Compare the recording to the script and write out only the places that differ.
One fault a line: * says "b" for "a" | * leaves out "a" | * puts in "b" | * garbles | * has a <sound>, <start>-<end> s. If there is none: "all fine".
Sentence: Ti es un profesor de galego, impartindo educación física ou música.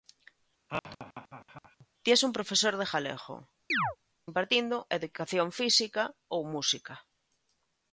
* has a laugh, 0.7-1.9 s
* has a chirp, 3.7-4.0 s